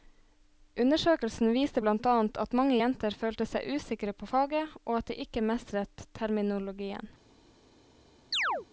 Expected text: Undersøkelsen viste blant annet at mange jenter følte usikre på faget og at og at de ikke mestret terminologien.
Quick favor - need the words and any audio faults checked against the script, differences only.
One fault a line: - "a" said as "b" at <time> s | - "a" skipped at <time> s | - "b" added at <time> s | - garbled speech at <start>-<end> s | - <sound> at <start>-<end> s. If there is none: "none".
- "seg" added at 3.5 s
- "og at" skipped at 5.1 s
- chirp at 8.3-8.7 s